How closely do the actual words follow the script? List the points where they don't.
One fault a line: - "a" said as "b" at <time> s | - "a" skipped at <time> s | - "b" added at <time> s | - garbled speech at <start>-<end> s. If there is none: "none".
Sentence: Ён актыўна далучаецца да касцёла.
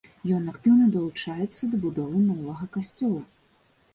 - "будовы новага" added at 1.8 s